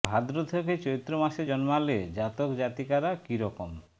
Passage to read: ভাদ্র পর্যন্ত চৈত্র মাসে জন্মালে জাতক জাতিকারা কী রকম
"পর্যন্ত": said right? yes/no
no